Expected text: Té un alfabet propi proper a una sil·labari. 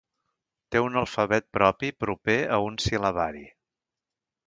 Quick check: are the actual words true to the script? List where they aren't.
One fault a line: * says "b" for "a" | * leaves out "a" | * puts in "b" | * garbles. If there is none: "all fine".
* says "un" for "una"